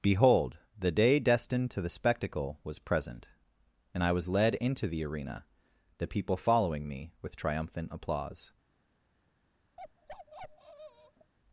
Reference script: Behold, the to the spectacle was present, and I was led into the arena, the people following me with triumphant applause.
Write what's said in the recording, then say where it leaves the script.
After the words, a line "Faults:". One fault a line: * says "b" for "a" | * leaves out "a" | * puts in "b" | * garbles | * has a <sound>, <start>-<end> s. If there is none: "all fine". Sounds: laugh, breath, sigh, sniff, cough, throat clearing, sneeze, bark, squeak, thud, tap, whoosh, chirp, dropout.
Behold, the day destined to the spectacle was present, and I was led into the arena, the people following me with triumphant applause.
Faults:
* puts in "day destined"
* has a bark, 9.8-11.3 s